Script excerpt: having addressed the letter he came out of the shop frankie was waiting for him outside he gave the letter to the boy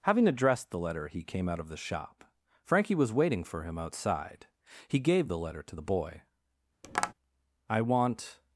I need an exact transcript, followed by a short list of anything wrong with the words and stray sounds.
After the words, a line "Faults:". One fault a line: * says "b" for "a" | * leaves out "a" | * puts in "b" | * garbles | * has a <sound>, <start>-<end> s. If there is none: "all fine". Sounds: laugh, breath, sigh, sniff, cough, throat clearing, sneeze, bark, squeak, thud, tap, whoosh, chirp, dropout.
having addressed the letter he came out of the shop frankie was waiting for him outside he gave the letter to the boy i want
Faults:
* has a tap, 6.8-7.1 s
* puts in "i want"